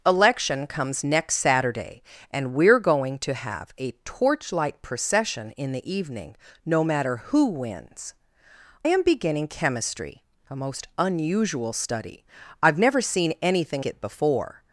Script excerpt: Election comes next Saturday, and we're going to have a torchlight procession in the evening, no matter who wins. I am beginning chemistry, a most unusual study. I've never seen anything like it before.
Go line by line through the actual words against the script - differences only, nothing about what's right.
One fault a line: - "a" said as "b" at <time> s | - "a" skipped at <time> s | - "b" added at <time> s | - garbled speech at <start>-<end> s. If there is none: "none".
- "I" skipped at 8.2 s
- "like" skipped at 13.9 s